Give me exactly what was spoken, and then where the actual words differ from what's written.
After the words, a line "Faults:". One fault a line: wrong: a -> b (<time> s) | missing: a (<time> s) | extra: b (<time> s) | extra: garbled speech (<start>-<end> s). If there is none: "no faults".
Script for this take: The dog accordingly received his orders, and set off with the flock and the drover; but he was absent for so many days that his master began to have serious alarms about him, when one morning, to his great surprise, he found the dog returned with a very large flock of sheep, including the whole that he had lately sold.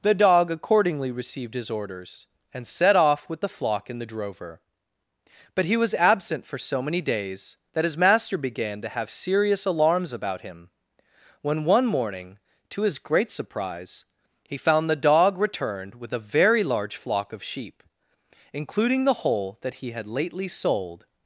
The dog accordingly received his orders, and set off with the flock and the drover; but he was absent for so many days that his master began to have serious alarms about him, when one morning, to his great surprise, he found the dog returned with a very large flock of sheep, including the whole that he had lately sold.
Faults:
no faults